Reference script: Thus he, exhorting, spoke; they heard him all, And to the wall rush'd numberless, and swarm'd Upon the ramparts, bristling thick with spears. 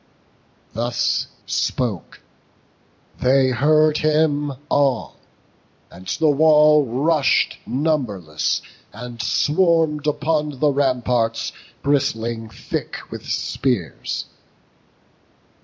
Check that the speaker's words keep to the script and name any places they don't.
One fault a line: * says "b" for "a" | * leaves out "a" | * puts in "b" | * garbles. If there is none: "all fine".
* leaves out "he exhorting"
* leaves out "to"